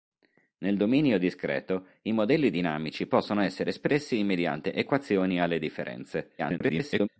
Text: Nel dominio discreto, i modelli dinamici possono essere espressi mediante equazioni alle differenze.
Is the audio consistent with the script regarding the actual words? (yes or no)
no